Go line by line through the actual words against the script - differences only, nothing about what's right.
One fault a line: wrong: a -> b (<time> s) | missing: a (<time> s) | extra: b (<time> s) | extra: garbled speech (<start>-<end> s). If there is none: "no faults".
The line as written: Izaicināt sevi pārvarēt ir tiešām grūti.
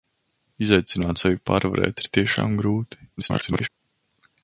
extra: garbled speech (3.2-3.7 s)